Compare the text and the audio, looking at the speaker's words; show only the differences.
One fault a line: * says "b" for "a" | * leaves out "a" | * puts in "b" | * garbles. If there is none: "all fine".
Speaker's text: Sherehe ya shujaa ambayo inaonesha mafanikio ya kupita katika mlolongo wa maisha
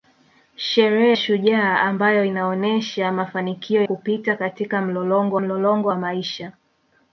* leaves out "ya"
* leaves out "ya"
* puts in "mlolongo"